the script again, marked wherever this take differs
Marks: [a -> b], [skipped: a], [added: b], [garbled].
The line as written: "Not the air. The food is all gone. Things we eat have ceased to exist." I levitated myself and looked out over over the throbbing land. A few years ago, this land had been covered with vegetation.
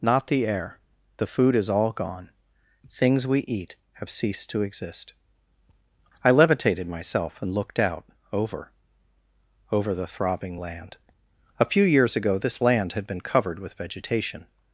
"Not the air. The food is all gone. Things we eat have ceased to exist." I levitated myself and looked out over over the throbbing land. A few years ago, this land had been covered with vegetation.